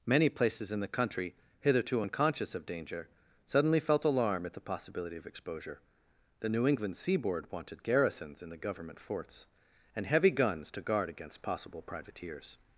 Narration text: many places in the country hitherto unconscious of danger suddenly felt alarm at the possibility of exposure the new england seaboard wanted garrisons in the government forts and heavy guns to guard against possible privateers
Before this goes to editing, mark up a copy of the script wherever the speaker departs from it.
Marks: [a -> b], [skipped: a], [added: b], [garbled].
many places in the country hitherto unconscious of danger suddenly felt alarm at the possibility of exposure the new england seaboard wanted garrisons in the government forts and heavy guns to guard against possible privateers